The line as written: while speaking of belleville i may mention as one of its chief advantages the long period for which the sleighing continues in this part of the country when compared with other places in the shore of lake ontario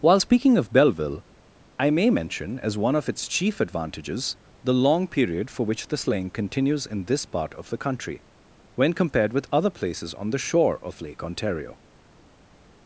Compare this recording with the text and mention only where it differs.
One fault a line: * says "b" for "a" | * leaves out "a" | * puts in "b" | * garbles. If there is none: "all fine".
* says "on" for "in"